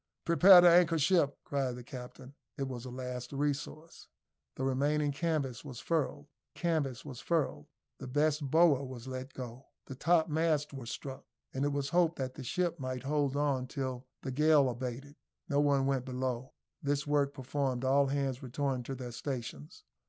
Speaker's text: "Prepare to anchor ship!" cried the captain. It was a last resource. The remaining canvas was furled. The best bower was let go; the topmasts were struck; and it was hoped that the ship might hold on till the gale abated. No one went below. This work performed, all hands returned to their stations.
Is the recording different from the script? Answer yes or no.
yes